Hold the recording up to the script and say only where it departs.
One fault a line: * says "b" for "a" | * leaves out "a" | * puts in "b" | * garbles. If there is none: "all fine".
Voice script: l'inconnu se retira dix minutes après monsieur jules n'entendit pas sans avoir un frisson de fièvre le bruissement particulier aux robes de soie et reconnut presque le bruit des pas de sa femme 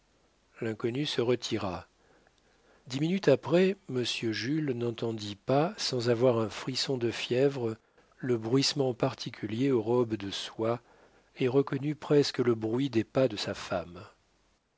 all fine